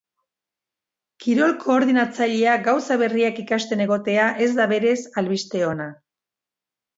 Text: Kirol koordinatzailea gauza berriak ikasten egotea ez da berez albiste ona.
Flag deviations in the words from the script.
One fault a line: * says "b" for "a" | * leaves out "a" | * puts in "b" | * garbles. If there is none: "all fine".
all fine